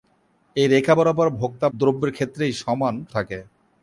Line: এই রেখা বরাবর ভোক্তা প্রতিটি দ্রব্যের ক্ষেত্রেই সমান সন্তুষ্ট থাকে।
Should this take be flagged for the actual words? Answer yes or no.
yes